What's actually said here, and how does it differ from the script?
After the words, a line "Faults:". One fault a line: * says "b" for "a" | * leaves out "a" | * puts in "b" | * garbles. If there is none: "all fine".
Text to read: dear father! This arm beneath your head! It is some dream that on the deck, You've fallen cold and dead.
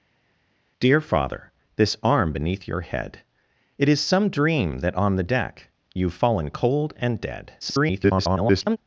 dear father! This arm beneath your head! It is some dream that on the deck, You've fallen cold and dead. [garbled]
Faults:
* garbles